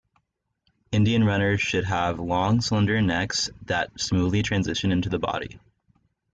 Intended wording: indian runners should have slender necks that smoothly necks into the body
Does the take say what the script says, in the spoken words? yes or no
no